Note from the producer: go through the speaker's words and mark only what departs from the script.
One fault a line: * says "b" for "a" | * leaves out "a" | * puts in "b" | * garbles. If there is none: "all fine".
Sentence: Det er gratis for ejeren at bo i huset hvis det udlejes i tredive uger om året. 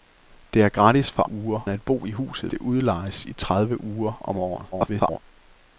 * says "uger" for "ejeren"
* leaves out "hvis"
* garbles